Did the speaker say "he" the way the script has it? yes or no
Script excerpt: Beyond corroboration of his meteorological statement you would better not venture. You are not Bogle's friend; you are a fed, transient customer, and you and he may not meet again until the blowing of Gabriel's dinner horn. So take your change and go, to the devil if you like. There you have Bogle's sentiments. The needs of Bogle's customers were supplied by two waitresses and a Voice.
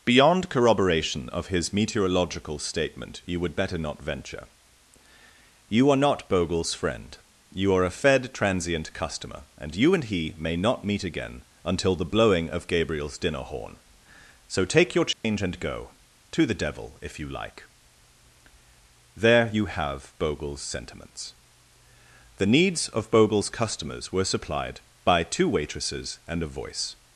yes